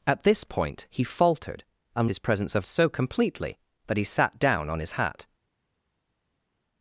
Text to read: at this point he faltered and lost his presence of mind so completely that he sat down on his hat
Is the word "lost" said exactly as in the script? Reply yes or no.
no